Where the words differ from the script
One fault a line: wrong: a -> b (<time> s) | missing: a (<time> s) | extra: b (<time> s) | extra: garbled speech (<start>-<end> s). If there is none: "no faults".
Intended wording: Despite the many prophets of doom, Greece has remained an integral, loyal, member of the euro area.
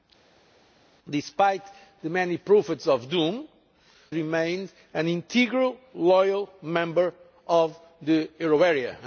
missing: Greece has (3.5 s)